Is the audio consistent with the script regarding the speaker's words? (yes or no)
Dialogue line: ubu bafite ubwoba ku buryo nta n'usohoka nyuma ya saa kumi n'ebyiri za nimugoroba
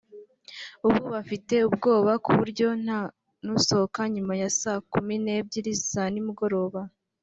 yes